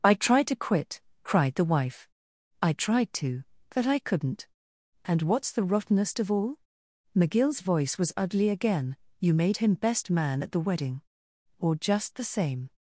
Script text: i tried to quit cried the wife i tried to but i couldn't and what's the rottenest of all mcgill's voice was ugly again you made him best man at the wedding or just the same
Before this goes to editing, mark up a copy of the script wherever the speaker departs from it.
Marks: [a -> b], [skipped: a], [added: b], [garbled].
i tried to quit cried the wife i tried to but i couldn't and what's the rottenest of all mcgill's voice was ugly again you made him best man at the wedding or just the same